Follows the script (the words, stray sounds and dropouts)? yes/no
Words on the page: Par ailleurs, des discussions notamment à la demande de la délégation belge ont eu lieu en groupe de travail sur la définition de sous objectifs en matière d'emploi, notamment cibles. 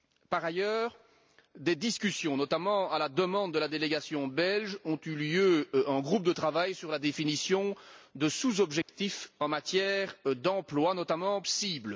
no